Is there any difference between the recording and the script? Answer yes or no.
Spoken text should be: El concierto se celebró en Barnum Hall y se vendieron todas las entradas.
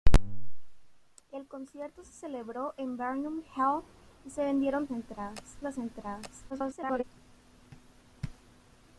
yes